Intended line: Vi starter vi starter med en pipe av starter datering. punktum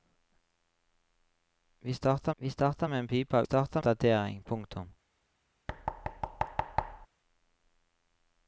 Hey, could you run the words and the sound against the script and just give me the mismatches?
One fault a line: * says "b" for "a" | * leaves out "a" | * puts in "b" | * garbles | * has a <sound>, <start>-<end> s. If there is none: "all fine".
* has a thud, 5.7-7.1 s